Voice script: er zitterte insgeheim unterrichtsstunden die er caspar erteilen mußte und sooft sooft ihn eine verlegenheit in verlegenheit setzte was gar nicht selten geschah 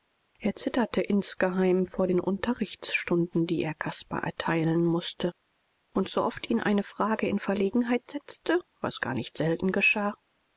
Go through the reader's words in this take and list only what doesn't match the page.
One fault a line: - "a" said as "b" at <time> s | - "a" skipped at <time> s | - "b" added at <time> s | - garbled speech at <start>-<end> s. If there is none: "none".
- "vor den" added at 1.9 s
- "sooft" skipped at 6.5 s
- "verlegenheit" said as "frage" at 6.8 s